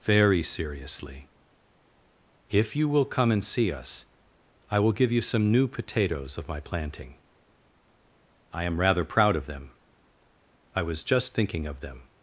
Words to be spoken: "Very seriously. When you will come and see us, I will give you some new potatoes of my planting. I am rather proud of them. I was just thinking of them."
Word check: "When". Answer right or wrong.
wrong